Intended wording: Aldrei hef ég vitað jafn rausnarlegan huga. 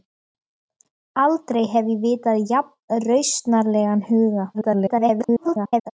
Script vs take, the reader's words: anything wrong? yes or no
yes